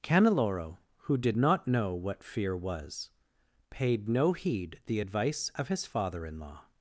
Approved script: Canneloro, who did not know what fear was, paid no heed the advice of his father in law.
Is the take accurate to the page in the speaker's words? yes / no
yes